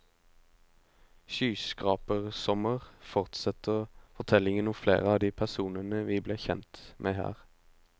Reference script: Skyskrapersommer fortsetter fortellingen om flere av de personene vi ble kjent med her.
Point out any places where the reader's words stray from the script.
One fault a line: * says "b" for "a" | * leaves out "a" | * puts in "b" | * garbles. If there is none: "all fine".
all fine